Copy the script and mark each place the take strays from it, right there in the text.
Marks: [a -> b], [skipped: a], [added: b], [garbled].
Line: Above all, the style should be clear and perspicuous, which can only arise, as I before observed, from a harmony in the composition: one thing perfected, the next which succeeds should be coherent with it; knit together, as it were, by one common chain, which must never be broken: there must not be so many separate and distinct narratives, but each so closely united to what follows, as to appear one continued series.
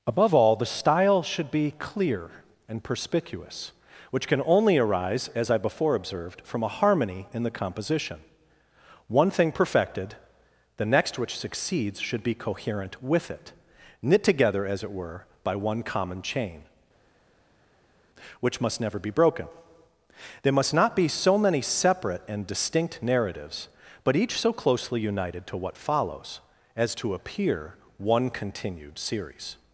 Above all, the style should be clear and perspicuous, which can only arise, as I before observed, from a harmony in the composition: one thing perfected, the next which succeeds should be coherent with it; knit together, as it were, by one common chain, which must never be broken: there must not be so many separate and distinct narratives, but each so closely united to what follows, as to appear one continued series.